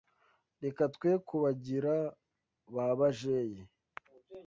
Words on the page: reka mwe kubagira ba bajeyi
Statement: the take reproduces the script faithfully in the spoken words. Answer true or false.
false